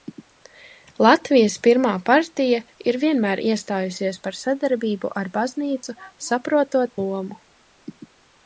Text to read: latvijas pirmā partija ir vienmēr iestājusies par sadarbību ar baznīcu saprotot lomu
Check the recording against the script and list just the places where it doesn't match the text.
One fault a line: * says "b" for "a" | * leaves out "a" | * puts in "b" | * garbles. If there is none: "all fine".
all fine